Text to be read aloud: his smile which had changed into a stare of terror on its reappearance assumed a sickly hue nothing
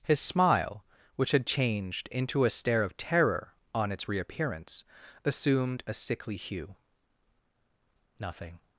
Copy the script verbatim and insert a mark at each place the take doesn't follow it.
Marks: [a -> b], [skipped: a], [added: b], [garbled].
his smile which had changed into a stare of terror on its reappearance assumed a sickly hue nothing